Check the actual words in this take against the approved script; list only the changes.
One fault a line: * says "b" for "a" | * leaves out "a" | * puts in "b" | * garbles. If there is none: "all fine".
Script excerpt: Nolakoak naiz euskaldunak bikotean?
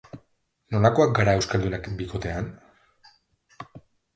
* says "gara" for "naiz"